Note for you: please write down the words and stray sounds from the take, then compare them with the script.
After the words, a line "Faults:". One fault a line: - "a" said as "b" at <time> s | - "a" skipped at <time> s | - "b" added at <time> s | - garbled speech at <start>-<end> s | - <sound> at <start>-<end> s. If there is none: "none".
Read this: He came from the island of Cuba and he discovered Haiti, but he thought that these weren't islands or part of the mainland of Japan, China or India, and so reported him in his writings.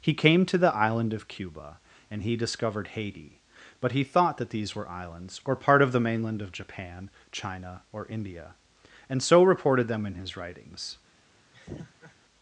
He came to the island of Cuba and he discovered Haiti, but he thought that these were islands or part of the mainland of Japan, China or India, and so reported them in his writings.
Faults:
- "from" said as "to" at 0.5 s
- "weren't" said as "were" at 4.8 s
- "him" said as "them" at 9.9 s
- laugh at 11.5-12.2 s